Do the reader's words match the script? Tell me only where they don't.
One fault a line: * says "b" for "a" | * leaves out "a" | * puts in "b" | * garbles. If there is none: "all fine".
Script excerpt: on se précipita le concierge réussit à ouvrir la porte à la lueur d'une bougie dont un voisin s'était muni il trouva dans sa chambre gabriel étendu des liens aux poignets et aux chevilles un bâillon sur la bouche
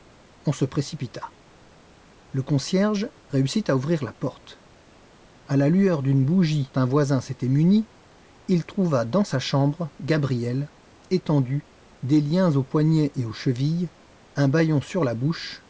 * leaves out "dont"